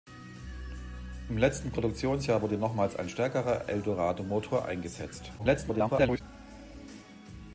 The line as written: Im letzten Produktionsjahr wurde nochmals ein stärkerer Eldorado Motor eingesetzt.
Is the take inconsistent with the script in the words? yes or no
yes